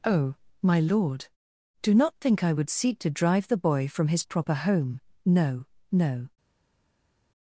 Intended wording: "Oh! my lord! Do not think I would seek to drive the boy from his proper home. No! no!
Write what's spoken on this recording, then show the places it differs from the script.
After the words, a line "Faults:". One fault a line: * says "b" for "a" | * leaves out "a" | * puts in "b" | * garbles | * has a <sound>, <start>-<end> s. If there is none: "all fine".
"Oh! my lord! Do not think I would seek to drive the boy from his proper home. No! no!
Faults:
all fine